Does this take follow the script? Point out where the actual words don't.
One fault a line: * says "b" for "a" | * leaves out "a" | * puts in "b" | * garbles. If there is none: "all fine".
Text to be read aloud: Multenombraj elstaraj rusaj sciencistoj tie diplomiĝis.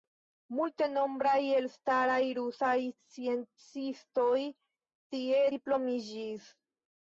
all fine